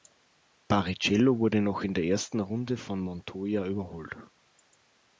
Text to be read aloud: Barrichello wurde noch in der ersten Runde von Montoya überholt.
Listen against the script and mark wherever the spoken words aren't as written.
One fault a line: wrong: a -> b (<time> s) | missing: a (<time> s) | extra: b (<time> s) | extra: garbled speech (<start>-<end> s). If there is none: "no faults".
no faults